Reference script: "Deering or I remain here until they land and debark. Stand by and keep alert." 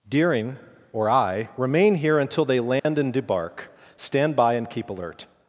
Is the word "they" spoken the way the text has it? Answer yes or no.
yes